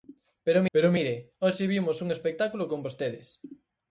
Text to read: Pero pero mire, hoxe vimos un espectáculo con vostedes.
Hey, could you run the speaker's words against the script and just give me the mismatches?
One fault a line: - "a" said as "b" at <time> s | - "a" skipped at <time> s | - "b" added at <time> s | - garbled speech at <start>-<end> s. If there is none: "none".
none